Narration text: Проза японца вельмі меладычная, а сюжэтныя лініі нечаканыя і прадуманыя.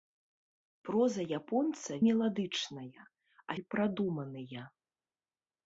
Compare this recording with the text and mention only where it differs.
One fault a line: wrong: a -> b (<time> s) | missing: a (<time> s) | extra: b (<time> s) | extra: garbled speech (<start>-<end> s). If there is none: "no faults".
missing: вельмі (1.9 s)
missing: сюжэтныя лініі нечаканыя (3.6 s)